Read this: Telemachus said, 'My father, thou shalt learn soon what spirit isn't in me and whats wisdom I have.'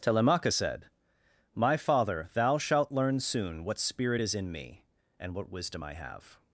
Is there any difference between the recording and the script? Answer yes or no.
yes